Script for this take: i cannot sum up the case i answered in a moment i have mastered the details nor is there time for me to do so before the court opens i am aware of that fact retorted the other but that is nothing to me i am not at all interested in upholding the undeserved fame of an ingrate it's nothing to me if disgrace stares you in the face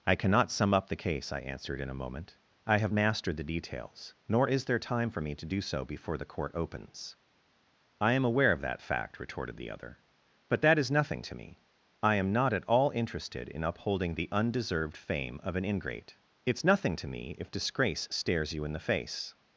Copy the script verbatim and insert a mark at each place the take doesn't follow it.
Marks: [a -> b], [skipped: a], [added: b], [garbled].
i cannot sum up the case i answered in a moment i have mastered the details nor is there time for me to do so before the court opens i am aware of that fact retorted the other but that is nothing to me i am not at all interested in upholding the undeserved fame of an ingrate it's nothing to me if disgrace stares you in the face